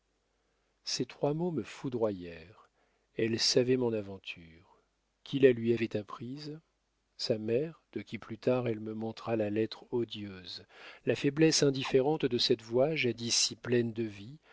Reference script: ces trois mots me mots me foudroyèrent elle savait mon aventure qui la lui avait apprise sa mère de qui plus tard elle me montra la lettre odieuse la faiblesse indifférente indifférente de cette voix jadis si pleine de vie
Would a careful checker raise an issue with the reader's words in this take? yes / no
yes